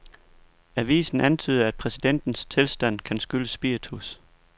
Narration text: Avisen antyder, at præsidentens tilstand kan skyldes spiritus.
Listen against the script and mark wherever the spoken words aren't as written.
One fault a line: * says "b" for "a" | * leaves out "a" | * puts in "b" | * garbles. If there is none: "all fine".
all fine